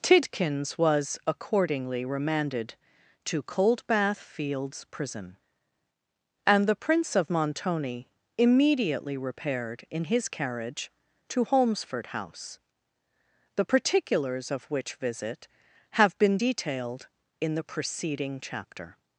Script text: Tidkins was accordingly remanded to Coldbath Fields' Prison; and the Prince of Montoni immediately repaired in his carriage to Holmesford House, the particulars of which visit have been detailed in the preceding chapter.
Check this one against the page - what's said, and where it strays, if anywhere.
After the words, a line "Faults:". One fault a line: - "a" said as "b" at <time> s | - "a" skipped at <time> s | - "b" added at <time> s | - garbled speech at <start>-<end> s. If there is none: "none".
Tidkins was accordingly remanded to Coldbath Fields' Prison; and the Prince of Montoni immediately repaired in his carriage to Holmesford House, the particulars of which visit have been detailed in the preceding chapter.
Faults:
none